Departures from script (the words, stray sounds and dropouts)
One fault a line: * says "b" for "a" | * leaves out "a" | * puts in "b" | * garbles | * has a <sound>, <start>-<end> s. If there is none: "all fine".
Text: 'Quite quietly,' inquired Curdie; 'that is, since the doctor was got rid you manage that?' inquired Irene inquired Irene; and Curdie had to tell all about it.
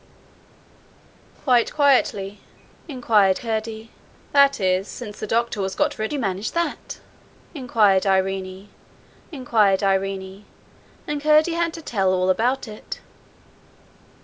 all fine